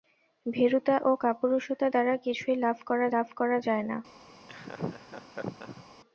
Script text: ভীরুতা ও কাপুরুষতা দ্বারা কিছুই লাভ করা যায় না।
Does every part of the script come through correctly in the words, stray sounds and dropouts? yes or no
no